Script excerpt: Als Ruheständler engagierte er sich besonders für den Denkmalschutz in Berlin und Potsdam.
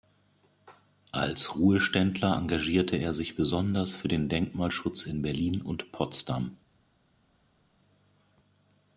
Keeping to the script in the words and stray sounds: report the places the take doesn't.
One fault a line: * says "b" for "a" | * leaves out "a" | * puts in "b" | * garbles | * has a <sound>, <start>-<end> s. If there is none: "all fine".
all fine